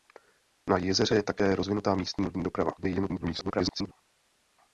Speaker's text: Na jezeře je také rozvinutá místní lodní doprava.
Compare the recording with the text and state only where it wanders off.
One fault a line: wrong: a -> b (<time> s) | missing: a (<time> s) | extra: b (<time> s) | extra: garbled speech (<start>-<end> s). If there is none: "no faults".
extra: garbled speech (2.8-3.9 s)